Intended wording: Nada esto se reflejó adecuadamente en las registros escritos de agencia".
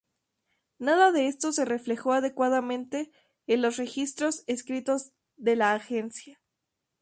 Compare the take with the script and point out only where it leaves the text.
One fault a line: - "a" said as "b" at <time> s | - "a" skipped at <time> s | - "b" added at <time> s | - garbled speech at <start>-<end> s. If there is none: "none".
- "de" added at 1.1 s
- "las" said as "los" at 3.6 s
- "la" added at 5.5 s